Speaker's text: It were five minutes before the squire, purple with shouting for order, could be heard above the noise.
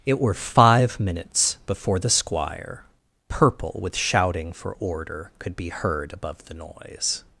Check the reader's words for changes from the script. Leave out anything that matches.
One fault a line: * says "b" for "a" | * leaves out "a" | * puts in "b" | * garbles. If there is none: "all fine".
all fine